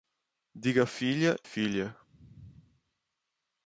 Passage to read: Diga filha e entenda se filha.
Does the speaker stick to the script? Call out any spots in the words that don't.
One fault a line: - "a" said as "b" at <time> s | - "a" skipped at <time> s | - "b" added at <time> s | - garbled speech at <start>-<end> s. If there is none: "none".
- "e entenda se" skipped at 1.4 s